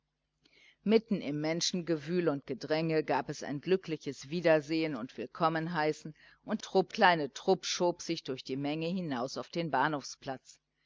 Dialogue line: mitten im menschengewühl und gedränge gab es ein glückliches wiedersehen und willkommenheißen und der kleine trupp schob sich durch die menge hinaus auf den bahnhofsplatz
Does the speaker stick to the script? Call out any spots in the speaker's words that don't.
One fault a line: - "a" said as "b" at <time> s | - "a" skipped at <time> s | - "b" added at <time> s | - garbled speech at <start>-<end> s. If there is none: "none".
- "der" said as "trupp" at 6.6 s